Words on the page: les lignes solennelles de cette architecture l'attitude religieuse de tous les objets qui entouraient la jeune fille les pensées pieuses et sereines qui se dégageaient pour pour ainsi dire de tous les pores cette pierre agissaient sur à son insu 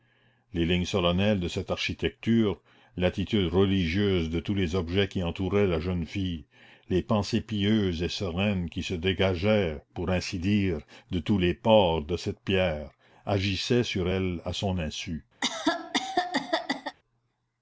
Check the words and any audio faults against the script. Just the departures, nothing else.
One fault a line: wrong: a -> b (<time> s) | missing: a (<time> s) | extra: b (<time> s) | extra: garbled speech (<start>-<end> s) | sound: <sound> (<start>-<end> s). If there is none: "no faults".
missing: pour (10.1 s)
extra: de (12.0 s)
extra: elle (14.1 s)
sound: cough (15.4-17.0 s)